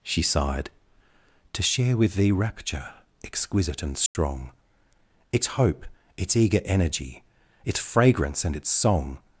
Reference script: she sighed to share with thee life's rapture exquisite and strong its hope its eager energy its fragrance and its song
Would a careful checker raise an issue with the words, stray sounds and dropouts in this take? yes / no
yes